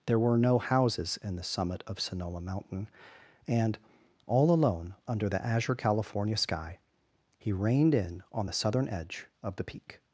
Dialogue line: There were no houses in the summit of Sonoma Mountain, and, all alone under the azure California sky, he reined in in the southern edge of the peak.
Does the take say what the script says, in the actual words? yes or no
no